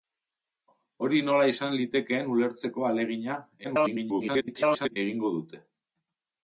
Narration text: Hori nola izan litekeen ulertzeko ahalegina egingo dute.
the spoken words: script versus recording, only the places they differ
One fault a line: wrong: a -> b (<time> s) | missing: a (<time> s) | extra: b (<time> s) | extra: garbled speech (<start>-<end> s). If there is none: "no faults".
extra: garbled speech (3.6-5.0 s)